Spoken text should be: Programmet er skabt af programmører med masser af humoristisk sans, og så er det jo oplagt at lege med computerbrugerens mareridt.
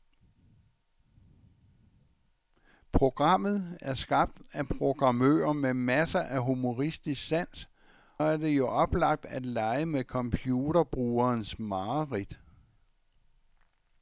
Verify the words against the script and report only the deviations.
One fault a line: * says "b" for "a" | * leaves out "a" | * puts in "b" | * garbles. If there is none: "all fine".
* leaves out "og så"